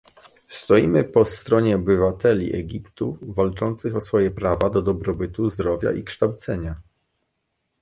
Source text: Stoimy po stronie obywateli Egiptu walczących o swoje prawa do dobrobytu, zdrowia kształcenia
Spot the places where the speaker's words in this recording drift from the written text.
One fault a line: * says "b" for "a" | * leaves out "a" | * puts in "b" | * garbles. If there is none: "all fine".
* puts in "i"